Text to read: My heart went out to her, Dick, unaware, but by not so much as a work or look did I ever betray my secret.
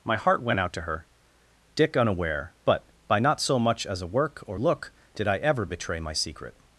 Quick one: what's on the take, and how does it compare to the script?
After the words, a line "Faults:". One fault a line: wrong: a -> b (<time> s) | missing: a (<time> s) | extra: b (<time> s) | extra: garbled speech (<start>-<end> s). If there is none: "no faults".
My heart went out to her, Dick, unaware, but by not so much as a work or look did I ever betray my secret.
Faults:
no faults